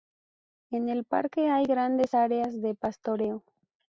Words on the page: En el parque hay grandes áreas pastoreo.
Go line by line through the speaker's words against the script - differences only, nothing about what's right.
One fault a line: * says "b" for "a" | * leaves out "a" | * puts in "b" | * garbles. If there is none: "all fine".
* puts in "de"